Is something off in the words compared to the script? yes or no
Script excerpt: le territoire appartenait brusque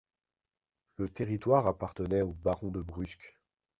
yes